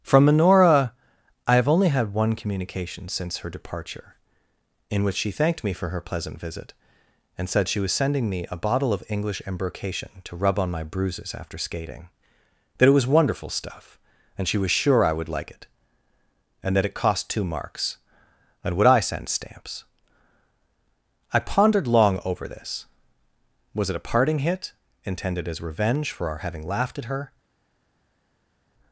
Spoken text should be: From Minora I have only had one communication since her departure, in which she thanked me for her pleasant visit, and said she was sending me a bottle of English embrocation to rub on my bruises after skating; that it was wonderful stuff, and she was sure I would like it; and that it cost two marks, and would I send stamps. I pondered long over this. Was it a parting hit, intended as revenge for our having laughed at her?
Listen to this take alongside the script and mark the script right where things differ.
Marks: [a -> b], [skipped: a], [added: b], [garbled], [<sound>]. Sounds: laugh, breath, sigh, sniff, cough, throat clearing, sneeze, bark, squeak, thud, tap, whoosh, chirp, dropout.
From Minora I have only had one communication since her departure, in which she thanked me for her pleasant visit, and said she was sending me a bottle of English embrocation to rub on my bruises after skating; that it was wonderful stuff, and she was sure I would like it; and that it cost two marks, and would I send stamps. I pondered long over this. Was it a parting hit, intended as revenge for our having laughed at her?